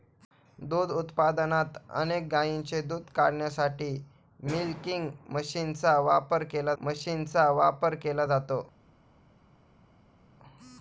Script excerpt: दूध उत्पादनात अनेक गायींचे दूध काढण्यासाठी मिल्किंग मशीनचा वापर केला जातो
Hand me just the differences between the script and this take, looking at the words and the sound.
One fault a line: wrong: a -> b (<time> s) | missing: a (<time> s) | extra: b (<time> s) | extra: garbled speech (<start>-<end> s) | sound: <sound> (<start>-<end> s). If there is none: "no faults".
extra: मशीनचा वापर केला (6.8 s)